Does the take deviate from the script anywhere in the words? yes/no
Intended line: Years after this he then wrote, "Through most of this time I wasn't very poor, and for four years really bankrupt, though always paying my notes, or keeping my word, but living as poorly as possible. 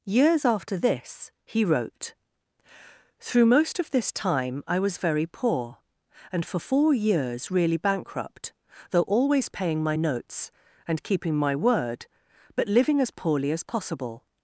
yes